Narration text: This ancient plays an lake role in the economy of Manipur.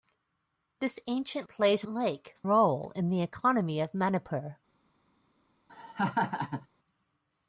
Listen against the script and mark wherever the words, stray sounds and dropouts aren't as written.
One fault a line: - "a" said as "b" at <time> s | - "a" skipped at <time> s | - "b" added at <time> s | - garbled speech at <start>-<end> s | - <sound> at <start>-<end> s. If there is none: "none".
- laugh at 5.7-6.7 s